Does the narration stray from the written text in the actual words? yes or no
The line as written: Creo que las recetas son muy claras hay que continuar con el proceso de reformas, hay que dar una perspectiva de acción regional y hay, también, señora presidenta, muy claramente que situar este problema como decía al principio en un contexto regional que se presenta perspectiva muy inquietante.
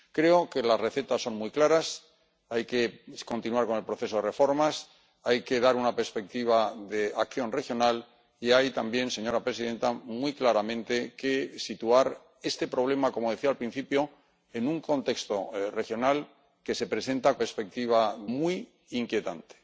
no